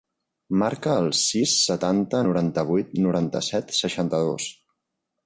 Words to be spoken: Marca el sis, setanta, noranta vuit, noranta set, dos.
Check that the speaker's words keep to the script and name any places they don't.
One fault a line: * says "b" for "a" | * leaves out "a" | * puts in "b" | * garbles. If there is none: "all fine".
* puts in "seixanta"